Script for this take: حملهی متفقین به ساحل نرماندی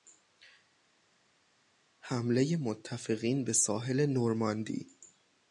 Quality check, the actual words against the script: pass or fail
pass